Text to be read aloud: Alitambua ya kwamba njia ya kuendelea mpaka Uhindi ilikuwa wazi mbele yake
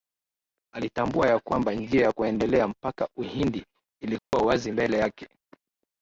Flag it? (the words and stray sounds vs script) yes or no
yes